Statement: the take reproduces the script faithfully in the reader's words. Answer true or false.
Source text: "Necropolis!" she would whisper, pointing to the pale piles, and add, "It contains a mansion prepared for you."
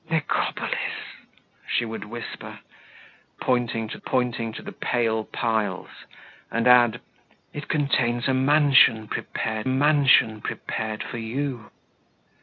false